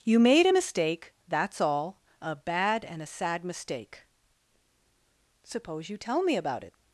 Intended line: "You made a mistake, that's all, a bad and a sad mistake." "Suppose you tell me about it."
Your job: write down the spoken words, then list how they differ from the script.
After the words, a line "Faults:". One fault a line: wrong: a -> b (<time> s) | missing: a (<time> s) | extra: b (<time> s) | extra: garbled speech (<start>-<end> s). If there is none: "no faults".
"You made a mistake, that's all, a bad and a sad mistake." "Suppose you tell me about it."
Faults:
no faults